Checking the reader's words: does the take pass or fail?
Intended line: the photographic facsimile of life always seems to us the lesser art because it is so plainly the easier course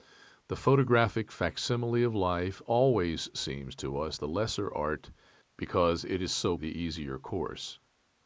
fail